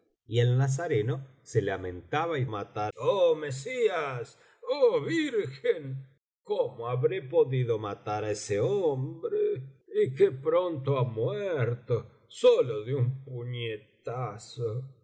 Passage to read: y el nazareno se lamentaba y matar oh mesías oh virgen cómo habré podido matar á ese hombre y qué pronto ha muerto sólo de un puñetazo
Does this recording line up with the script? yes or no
yes